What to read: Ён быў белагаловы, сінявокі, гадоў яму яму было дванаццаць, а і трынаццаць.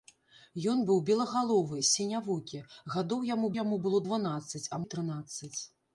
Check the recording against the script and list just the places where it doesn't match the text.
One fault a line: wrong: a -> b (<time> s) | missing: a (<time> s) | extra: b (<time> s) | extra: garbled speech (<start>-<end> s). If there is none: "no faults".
no faults